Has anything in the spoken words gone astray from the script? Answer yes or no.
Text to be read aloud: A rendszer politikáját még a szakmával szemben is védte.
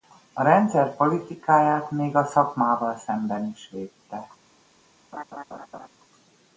no